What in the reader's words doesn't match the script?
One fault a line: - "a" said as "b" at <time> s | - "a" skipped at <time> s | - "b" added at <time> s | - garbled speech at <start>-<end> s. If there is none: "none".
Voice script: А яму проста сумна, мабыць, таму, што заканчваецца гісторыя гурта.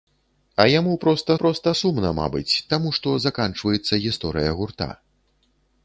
- "проста" added at 1.4 s